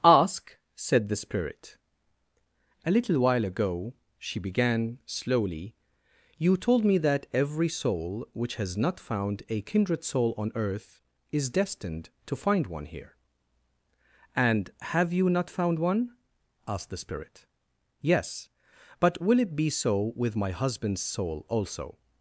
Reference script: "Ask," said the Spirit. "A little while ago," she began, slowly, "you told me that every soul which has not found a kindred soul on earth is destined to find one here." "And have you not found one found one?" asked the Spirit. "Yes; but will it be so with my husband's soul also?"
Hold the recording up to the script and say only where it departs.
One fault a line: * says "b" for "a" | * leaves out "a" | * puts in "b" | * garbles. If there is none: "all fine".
* leaves out "found one"